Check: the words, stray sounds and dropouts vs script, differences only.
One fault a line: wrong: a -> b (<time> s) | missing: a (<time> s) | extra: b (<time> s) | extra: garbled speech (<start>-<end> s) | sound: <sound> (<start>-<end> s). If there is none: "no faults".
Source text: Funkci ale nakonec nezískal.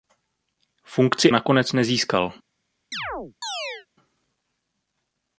missing: ale (1.3 s)
sound: chirp (2.9-3.9 s)